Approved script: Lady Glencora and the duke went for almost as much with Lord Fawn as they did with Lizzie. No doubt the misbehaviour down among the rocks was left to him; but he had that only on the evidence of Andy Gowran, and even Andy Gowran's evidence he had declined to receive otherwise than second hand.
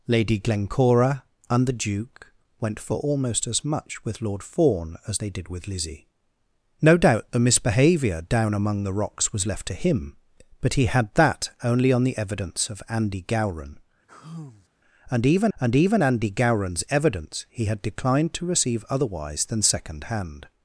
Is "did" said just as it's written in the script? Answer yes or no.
yes